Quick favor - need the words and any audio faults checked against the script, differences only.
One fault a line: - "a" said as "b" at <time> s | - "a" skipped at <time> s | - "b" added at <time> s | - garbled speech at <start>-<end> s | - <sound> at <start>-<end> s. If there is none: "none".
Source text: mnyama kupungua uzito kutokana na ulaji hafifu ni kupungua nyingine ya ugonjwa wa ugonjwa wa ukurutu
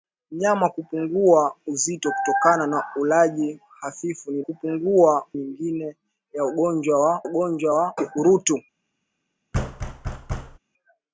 - thud at 9.5-10.6 s